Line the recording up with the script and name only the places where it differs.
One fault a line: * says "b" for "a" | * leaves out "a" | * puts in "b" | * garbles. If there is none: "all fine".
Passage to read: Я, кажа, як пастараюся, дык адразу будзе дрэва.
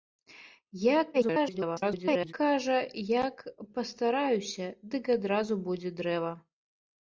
* garbles